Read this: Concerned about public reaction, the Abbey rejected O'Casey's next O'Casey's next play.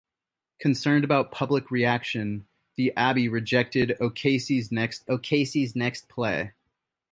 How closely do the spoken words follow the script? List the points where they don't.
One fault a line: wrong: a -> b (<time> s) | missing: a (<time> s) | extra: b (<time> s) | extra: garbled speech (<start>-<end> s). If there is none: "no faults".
no faults